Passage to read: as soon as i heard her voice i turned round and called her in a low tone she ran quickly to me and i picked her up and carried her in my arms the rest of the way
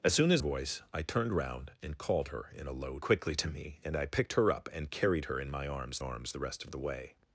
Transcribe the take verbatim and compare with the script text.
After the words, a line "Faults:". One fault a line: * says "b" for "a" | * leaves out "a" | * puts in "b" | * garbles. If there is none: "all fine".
as soon as voice i turned round and called her in a low quickly to me and i picked her up and carried her in my arms arms the rest of the way
Faults:
* leaves out "i heard her"
* leaves out "tone she ran"
* puts in "arms"